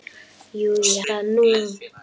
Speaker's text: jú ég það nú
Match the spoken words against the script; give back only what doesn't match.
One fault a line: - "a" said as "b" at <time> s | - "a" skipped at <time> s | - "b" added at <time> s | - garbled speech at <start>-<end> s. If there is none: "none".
none